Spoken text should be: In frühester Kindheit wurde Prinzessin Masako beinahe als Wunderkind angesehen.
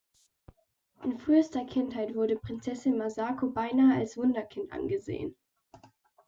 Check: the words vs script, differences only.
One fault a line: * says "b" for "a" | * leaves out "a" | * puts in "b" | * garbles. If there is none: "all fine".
all fine